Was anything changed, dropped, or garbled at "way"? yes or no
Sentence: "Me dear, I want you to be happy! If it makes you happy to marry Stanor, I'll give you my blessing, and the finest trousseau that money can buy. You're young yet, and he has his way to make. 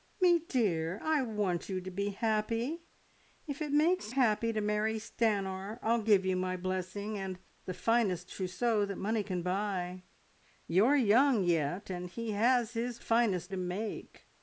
yes